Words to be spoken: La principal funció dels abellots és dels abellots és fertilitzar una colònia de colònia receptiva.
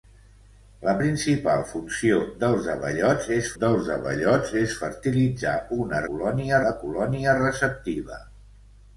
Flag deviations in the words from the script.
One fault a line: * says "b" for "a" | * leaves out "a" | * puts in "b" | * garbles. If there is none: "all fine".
all fine